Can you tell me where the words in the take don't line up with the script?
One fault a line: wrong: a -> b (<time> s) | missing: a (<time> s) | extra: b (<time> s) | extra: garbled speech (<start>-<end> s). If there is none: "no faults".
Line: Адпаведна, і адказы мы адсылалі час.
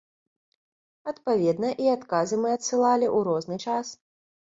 extra: ў розны (3.2 s)